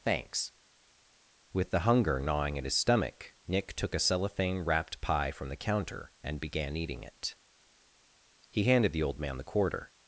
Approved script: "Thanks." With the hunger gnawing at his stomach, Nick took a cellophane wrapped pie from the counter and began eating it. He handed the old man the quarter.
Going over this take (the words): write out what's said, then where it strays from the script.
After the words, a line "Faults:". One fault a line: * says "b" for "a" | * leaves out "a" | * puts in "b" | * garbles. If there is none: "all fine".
"Thanks." With the hunger gnawing at his stomach, Nick took a cellophane wrapped pie from the counter and began eating it. He handed the old man the quarter.
Faults:
all fine